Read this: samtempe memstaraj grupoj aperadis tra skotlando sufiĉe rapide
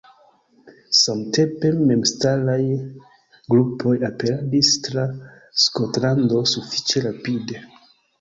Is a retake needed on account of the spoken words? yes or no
no